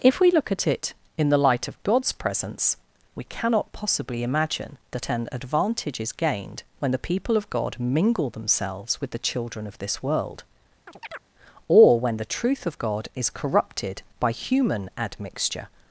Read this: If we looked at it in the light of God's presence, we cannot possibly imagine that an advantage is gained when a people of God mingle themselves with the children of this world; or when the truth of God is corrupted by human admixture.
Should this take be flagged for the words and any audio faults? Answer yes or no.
yes